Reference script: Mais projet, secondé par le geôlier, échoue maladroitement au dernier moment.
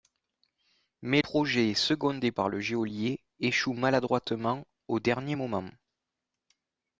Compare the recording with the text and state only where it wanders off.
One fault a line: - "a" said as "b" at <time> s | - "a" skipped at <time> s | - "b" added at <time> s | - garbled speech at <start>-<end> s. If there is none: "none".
none